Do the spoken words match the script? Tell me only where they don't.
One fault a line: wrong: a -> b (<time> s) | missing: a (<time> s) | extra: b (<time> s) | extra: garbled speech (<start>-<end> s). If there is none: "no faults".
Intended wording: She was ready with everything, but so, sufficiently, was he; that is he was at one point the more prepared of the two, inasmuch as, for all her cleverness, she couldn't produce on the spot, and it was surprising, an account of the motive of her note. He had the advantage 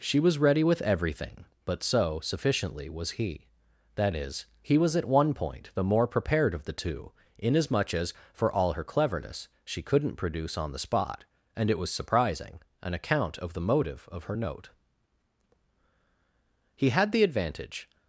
no faults